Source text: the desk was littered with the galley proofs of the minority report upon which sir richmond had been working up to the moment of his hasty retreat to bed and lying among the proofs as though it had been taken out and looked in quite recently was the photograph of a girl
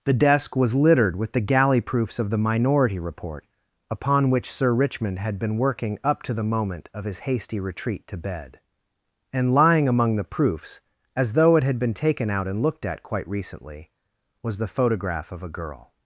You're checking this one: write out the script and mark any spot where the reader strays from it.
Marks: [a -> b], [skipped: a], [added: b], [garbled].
the desk was littered with the galley proofs of the minority report upon which sir richmond had been working up to the moment of his hasty retreat to bed and lying among the proofs as though it had been taken out and looked [in -> at] quite recently was the photograph of a girl